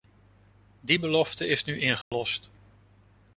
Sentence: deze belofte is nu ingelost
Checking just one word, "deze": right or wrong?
wrong